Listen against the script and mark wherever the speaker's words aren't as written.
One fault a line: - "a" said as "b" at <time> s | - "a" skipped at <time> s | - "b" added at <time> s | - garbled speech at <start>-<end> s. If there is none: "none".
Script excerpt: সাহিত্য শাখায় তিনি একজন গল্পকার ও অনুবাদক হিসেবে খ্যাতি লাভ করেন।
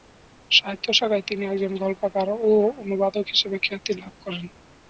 none